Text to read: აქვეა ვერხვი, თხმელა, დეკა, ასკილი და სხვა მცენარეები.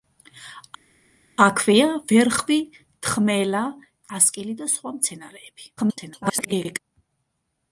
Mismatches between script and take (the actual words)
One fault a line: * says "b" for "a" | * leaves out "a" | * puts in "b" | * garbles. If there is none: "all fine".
* leaves out "დეკა"
* garbles